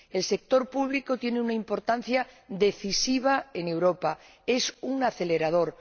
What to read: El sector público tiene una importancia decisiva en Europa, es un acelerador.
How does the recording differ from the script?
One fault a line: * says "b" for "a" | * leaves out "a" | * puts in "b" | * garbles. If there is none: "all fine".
all fine